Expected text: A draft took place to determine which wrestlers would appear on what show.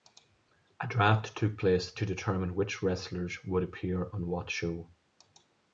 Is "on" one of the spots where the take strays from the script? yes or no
no